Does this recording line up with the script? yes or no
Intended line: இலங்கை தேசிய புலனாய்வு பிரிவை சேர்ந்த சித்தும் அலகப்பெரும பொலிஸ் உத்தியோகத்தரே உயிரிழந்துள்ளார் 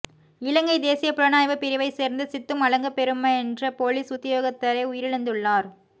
no